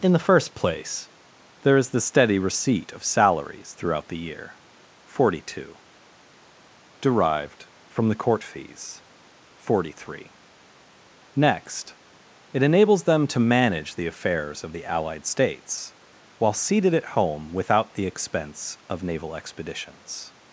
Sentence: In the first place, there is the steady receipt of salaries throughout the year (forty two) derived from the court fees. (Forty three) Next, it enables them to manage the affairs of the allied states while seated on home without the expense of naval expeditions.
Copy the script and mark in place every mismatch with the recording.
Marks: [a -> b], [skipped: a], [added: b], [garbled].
In the first place, there is the steady receipt of salaries throughout the year (forty two) derived from the court fees. (Forty three) Next, it enables them to manage the affairs of the allied states while seated [on -> at] home without the expense of naval expeditions.